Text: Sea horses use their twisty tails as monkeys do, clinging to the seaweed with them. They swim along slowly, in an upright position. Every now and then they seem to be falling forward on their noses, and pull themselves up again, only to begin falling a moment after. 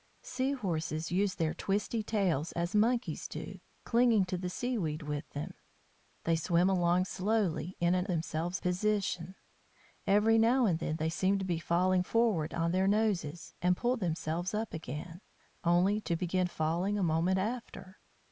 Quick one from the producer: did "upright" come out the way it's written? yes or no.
no